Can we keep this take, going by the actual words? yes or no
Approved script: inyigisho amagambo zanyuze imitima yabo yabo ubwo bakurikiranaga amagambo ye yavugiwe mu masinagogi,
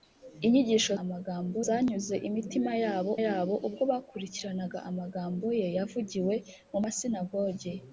yes